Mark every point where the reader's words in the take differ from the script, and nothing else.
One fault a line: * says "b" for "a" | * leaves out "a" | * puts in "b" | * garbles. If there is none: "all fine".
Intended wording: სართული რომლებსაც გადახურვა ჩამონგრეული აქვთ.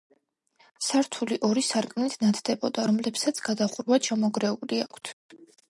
* puts in "ორი სარკმლით ნათდებოდა"